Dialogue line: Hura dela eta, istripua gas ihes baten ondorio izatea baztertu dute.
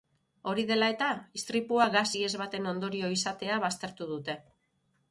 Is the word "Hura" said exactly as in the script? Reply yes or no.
no